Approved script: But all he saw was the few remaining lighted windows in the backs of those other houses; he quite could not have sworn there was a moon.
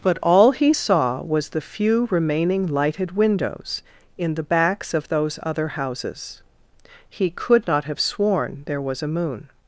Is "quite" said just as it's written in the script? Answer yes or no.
no